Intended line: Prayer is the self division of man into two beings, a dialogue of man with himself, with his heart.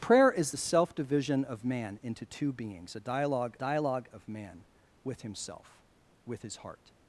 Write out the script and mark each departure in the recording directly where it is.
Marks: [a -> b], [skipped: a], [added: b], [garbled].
Prayer is the self division of man into two beings, a dialogue [added: dialogue] of man with himself, with his heart.